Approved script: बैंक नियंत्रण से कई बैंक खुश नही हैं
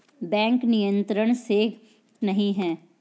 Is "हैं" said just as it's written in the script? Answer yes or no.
yes